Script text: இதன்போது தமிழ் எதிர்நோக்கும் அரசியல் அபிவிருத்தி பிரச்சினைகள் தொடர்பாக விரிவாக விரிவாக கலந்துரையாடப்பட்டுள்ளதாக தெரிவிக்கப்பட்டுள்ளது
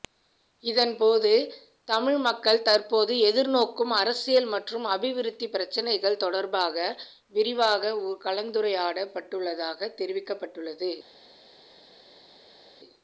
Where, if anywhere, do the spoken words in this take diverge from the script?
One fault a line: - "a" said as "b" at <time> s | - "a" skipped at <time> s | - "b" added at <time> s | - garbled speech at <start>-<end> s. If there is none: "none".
- "மக்கள் தற்போது" added at 2.2 s
- "மற்றும்" added at 4.5 s
- "விரிவாக" skipped at 7.9 s